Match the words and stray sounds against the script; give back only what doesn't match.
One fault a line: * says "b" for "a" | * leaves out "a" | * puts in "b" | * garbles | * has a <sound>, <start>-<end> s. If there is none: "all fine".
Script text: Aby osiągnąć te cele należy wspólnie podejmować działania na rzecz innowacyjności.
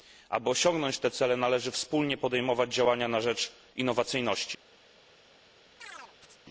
* has a chirp, 5.8-6.4 s